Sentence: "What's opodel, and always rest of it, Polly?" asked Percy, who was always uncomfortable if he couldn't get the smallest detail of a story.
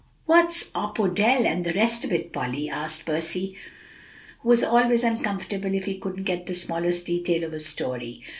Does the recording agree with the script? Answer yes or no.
no